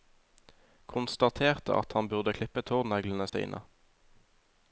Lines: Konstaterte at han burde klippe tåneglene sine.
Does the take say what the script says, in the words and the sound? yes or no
no